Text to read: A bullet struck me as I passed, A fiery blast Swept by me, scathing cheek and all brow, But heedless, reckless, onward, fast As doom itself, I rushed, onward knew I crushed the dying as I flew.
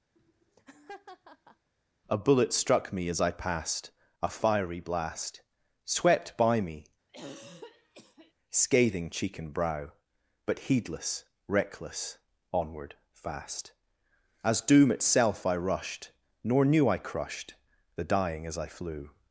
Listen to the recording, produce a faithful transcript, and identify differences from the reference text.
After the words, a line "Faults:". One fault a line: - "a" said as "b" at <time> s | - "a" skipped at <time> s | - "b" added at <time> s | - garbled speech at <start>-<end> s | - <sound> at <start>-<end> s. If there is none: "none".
A bullet struck me as I passed, A fiery blast Swept by me, scathing cheek and brow, But heedless, reckless, onward, fast As doom itself, I rushed, nor knew I crushed the dying as I flew.
Faults:
- laugh at 0.2-1.7 s
- throat clearing at 7.1-8.3 s
- "all" skipped at 9.5 s
- "onward" said as "nor" at 16.4 s